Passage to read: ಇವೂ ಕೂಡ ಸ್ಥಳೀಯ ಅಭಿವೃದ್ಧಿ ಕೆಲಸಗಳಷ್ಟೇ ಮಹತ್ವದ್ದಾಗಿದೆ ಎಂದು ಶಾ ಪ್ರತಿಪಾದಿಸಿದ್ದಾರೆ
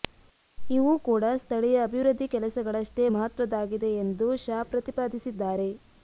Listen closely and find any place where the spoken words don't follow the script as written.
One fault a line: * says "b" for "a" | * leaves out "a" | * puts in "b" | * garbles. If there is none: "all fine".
all fine